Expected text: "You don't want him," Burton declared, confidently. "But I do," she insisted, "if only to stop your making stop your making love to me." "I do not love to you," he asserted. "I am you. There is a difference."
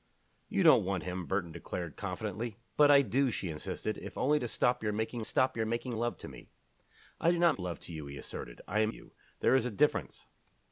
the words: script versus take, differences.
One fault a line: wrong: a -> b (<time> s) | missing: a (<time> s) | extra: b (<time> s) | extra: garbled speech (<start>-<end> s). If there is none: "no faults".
no faults